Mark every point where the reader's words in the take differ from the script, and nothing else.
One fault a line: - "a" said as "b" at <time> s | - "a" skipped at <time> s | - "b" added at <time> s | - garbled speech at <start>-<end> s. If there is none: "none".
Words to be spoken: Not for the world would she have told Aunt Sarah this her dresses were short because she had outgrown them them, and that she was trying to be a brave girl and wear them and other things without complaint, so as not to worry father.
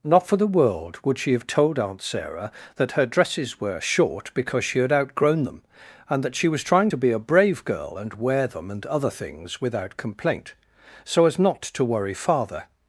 - "this" said as "that" at 2.8 s
- "them" skipped at 5.6 s